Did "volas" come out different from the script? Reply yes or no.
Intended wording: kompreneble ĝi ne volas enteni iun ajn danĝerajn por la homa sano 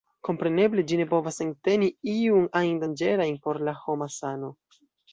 yes